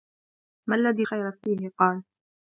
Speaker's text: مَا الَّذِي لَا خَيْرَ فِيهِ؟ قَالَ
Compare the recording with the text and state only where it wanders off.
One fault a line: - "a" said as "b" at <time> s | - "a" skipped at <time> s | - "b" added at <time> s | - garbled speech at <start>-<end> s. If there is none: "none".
- "لَا" skipped at 1.1 s